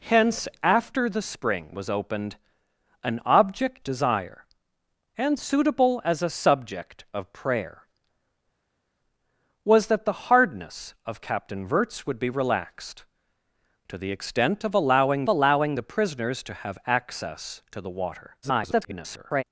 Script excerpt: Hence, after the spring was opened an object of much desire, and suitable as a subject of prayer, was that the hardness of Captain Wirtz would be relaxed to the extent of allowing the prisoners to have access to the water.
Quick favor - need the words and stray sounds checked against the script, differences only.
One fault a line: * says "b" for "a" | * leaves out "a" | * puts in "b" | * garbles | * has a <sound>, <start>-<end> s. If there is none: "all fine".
* leaves out "of much"
* puts in "allowing"
* garbles